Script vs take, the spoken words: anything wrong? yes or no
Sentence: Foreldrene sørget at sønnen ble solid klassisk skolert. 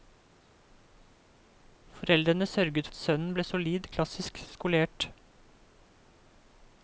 no